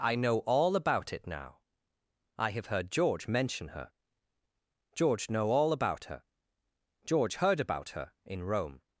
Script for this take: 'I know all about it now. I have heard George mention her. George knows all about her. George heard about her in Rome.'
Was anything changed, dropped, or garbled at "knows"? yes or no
yes